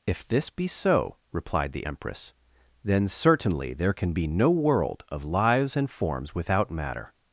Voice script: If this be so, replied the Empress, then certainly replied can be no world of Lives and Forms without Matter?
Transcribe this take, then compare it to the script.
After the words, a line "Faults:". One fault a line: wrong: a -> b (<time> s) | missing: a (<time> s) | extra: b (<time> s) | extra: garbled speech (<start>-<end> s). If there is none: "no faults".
If this be so, replied the Empress, then certainly there can be no world of Lives and Forms without Matter?
Faults:
wrong: replied -> there (3.7 s)